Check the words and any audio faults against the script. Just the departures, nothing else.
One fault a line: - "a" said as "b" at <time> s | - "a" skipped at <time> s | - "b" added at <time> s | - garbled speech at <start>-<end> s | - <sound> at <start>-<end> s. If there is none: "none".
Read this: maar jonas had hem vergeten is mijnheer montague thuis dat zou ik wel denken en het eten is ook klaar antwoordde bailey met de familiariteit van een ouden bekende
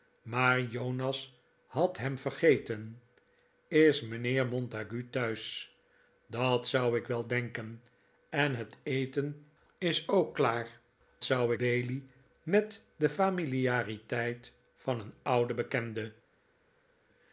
- "antwoordde" said as "zou" at 11.2 s